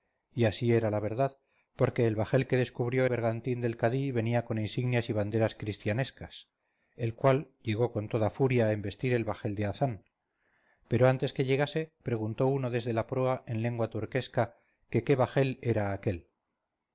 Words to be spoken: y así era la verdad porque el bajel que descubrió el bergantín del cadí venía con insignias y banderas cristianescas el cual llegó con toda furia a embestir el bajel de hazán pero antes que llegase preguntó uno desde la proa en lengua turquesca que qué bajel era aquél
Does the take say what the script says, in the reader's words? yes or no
no